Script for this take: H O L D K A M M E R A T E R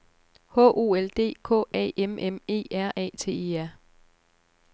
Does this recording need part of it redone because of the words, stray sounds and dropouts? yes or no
no